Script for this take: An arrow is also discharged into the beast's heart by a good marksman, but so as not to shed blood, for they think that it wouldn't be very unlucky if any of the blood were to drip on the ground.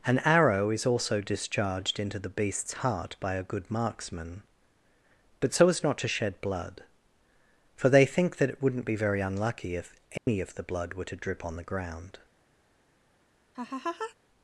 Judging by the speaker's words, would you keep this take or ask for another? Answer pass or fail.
pass